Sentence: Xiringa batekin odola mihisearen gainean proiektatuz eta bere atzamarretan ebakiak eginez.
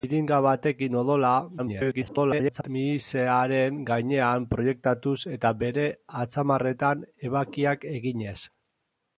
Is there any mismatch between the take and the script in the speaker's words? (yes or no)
yes